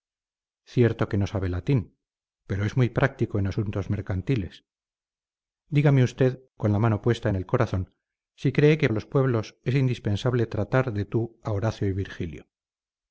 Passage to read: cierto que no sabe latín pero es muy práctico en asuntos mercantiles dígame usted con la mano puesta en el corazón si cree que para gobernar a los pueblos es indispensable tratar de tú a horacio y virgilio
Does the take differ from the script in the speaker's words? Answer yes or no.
yes